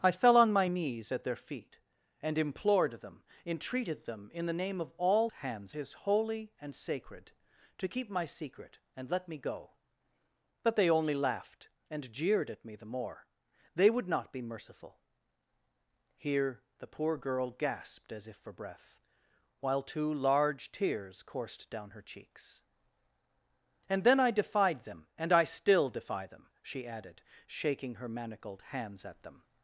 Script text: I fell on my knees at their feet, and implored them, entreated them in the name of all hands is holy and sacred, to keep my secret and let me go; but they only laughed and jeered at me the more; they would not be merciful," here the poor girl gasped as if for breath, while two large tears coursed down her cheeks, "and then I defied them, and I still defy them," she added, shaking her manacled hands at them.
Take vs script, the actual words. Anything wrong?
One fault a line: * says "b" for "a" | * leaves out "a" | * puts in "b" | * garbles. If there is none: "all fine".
all fine